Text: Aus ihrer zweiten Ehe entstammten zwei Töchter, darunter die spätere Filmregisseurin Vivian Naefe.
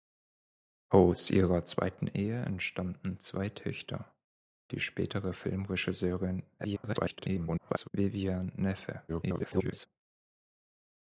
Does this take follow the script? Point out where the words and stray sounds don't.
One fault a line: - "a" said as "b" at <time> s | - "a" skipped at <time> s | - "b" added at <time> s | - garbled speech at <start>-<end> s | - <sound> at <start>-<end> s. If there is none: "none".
- "darunter" skipped at 4.2 s
- garbled speech at 6.6-7.9 s
- garbled speech at 9.1-9.9 s